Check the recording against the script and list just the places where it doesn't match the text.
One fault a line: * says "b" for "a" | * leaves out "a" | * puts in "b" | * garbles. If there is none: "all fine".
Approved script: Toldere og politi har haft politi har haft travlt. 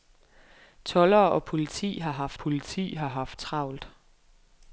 all fine